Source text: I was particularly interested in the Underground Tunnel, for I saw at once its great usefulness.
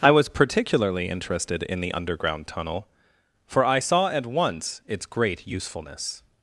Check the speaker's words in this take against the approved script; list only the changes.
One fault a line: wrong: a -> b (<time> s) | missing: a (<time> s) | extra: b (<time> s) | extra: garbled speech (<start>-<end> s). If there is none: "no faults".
no faults